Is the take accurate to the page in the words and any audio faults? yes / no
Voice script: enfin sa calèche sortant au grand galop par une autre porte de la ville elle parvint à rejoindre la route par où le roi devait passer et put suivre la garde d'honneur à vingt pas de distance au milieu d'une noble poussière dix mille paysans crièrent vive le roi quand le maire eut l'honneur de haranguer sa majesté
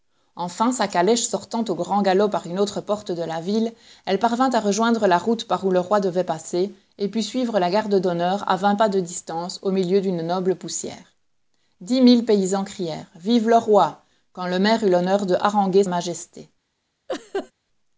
no